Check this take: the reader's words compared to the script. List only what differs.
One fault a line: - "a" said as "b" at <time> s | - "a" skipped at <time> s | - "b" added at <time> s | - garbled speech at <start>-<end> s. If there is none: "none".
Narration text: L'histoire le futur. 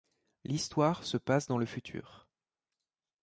- "se passe dans" added at 1.0 s